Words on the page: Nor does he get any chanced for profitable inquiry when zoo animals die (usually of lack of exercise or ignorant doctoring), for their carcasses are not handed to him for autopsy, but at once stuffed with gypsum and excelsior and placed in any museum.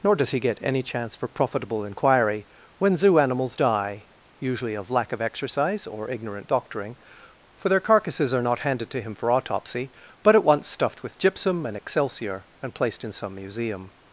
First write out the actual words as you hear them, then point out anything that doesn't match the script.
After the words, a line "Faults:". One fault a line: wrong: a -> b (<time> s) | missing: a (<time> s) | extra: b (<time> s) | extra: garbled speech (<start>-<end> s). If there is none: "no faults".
Nor does he get any chance for profitable inquiry when zoo animals die (usually of lack of exercise or ignorant doctoring), for their carcasses are not handed to him for autopsy, but at once stuffed with gypsum and excelsior and placed in some museum.
Faults:
wrong: chanced -> chance (0.8 s)
wrong: any -> some (13.1 s)